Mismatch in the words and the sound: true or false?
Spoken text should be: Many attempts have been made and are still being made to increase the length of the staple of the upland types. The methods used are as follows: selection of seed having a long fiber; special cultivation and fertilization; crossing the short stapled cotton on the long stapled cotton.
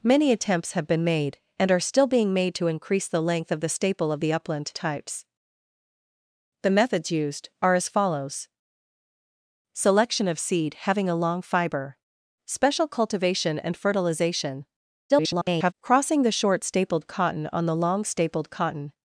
true